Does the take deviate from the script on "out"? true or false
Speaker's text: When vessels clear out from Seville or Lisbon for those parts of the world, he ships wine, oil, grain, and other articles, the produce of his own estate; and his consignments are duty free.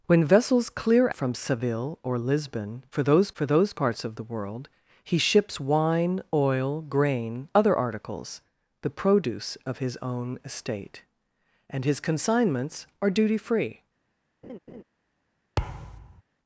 true